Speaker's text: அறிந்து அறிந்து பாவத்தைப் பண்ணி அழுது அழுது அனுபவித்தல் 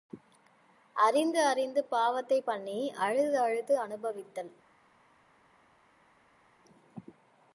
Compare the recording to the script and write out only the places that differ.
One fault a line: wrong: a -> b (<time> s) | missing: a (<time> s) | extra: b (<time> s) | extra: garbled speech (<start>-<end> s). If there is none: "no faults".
no faults